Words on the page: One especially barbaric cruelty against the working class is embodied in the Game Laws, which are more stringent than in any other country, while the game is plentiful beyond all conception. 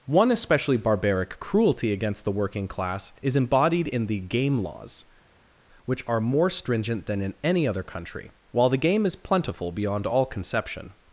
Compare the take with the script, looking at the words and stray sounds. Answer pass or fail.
pass